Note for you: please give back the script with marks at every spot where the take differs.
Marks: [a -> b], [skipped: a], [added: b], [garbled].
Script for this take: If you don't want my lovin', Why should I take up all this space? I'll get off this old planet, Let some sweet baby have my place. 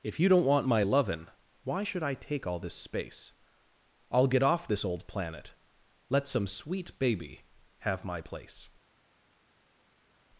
If you don't want my lovin', Why should I take [skipped: up] all this space? I'll get off this old planet, Let some sweet baby have my place.